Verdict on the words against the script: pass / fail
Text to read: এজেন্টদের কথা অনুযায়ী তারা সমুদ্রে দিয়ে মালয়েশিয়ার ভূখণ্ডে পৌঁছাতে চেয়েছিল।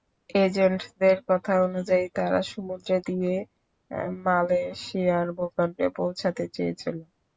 pass